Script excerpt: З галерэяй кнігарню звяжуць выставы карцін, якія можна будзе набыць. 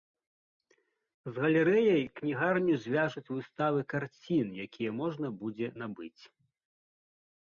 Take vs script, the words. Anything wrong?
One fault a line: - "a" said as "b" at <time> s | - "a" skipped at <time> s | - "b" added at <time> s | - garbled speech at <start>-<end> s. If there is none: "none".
none